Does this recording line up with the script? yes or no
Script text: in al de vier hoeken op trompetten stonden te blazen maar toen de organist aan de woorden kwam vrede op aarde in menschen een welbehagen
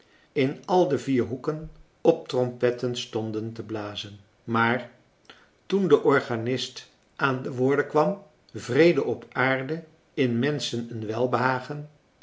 yes